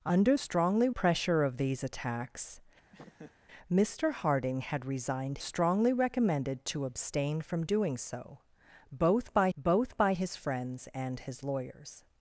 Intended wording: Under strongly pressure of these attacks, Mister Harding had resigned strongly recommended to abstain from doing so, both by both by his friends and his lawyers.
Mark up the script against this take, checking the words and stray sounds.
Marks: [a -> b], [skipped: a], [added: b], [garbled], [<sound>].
Under strongly pressure of these attacks, [laugh] Mister Harding had resigned strongly recommended to abstain from doing so, both by both by his friends and his lawyers.